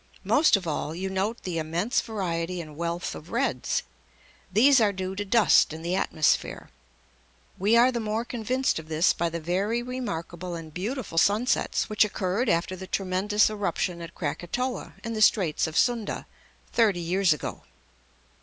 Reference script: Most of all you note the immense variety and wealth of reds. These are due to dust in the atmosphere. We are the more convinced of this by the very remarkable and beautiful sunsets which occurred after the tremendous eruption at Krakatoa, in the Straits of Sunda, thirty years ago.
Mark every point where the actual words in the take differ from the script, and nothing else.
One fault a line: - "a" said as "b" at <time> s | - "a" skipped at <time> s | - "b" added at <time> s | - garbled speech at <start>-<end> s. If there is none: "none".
none